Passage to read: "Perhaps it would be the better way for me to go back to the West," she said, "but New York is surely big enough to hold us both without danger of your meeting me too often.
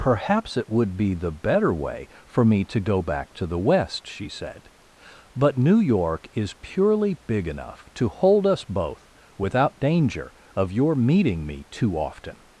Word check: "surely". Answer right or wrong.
wrong